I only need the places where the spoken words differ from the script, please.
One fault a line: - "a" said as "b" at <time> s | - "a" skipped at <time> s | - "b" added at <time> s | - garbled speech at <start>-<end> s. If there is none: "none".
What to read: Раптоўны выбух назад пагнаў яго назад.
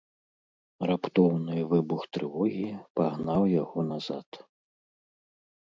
- "назад" said as "трывогі" at 2.2 s